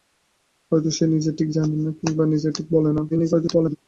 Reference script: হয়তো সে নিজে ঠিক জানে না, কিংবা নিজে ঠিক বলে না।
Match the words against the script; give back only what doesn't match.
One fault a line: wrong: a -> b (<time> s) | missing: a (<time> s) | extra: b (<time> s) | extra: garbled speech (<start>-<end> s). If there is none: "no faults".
extra: garbled speech (3.1-3.8 s)